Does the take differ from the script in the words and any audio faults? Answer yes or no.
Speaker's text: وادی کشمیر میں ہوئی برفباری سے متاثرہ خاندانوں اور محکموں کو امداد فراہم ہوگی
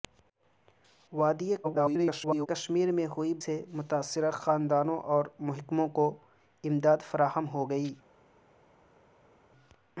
yes